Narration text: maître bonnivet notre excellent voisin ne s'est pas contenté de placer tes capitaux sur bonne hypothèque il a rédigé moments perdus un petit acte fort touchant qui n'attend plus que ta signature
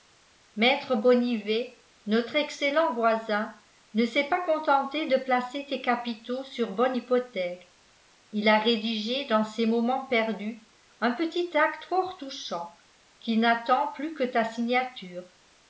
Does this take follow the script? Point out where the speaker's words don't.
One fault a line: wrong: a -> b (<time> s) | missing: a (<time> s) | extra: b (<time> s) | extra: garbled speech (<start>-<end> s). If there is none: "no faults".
extra: dans ses (9.3 s)